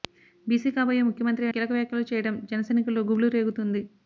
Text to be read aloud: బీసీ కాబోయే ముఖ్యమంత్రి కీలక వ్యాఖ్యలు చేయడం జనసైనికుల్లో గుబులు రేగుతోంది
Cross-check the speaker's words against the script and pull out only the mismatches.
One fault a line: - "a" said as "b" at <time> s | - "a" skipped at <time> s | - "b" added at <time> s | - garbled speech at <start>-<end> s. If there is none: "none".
none